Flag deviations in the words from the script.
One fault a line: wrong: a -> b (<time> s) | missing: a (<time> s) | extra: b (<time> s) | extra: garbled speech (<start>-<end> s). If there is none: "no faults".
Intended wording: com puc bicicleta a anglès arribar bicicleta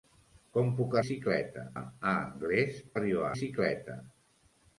no faults